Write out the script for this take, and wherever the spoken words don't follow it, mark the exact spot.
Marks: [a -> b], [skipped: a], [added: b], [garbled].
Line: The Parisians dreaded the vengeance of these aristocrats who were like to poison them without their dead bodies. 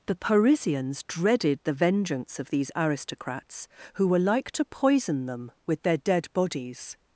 The Parisians dreaded the vengeance of these aristocrats who were like to poison them [without -> with] their dead bodies.